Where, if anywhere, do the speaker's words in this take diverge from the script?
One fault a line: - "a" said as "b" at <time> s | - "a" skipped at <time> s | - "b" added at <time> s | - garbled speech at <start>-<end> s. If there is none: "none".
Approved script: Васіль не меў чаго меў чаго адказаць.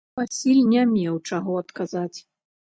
- "меў чаго" skipped at 1.6 s